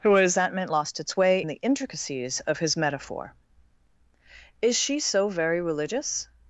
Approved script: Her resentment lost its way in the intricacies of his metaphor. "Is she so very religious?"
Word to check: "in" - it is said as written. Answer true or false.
false